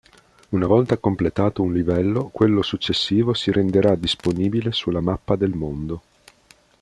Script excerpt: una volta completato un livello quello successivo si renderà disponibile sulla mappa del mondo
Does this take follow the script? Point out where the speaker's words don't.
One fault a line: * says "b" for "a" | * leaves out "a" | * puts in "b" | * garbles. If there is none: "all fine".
all fine